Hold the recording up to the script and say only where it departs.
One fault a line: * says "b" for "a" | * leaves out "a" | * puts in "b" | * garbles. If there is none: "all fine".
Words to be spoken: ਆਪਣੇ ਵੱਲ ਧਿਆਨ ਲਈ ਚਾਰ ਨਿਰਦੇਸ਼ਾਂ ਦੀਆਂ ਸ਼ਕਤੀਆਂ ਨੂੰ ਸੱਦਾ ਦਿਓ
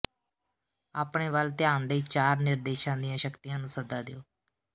all fine